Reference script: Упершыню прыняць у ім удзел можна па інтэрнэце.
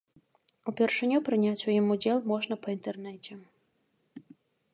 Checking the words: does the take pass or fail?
pass